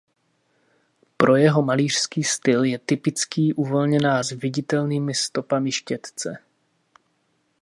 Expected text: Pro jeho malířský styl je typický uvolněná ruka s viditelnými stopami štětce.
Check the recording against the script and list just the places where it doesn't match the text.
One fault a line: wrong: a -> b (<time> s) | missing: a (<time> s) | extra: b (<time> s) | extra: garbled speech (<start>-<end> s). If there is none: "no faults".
missing: ruka (4.2 s)